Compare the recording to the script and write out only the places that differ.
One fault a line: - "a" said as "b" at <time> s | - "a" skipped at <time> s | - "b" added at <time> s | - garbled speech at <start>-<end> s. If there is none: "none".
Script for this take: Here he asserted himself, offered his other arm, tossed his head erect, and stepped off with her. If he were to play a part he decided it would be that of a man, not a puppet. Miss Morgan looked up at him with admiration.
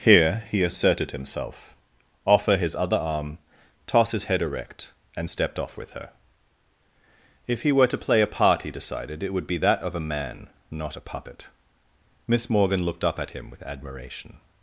- "offered" said as "offer" at 2.2 s
- "tossed" said as "toss" at 3.9 s